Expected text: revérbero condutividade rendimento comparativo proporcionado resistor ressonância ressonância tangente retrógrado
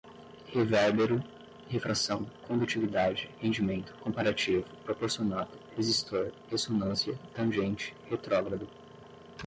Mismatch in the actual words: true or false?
true